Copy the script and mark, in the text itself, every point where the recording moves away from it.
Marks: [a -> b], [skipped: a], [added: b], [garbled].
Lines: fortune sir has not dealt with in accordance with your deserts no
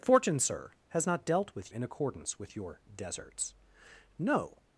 fortune sir has not dealt with in accordance with your deserts no